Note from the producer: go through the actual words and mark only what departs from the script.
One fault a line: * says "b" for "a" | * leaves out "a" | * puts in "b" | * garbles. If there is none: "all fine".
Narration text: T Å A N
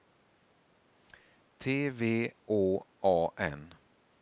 * puts in "V"